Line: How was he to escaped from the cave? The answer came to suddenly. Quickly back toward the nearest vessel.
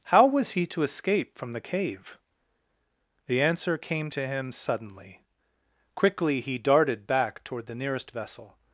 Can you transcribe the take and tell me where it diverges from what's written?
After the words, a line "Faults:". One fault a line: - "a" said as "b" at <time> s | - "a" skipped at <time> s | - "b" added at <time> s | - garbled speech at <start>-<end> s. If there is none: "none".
How was he to escape from the cave? The answer came to him suddenly. Quickly he darted back toward the nearest vessel.
Faults:
- "escaped" said as "escape" at 0.8 s
- "him" added at 4.3 s
- "he darted" added at 6.4 s